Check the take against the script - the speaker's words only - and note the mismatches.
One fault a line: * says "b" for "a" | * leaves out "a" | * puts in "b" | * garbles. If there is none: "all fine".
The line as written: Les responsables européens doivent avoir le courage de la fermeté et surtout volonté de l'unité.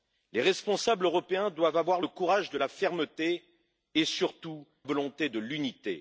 all fine